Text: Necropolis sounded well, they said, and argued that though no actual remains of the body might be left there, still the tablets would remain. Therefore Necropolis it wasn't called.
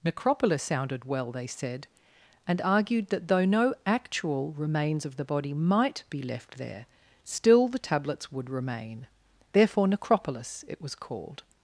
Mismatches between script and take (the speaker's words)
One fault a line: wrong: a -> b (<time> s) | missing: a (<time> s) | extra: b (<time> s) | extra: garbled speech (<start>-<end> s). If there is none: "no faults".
wrong: wasn't -> was (10.8 s)